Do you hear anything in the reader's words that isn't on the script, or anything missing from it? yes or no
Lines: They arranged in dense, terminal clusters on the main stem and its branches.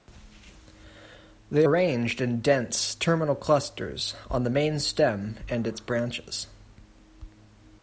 no